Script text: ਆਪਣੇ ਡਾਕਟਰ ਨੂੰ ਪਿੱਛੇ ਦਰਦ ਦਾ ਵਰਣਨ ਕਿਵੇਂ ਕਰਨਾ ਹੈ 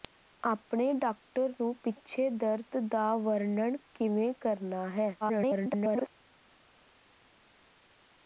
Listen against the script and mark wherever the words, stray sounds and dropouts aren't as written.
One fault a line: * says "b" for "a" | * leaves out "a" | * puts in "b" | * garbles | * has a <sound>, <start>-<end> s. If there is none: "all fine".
* garbles